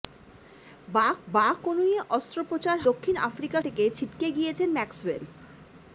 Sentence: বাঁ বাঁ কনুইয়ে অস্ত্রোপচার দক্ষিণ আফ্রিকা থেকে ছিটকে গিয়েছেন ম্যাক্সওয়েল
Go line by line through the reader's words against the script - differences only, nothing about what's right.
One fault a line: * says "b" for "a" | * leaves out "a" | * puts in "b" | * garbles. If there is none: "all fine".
all fine